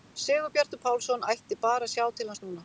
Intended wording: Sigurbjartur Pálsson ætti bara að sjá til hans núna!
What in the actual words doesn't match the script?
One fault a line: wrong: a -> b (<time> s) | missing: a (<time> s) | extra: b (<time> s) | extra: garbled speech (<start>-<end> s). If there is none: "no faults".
no faults